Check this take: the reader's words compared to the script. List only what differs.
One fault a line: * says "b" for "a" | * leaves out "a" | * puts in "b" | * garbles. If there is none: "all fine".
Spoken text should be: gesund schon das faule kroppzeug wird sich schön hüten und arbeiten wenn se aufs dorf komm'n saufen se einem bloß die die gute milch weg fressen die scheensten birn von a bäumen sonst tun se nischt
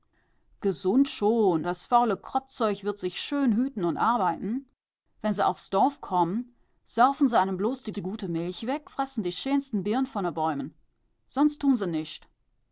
all fine